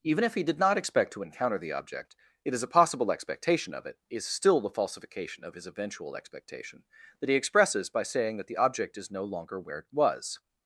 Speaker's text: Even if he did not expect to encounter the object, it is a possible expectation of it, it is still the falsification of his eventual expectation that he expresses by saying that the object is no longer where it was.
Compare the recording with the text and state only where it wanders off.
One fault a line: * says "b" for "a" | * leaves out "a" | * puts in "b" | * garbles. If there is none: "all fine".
* leaves out "it"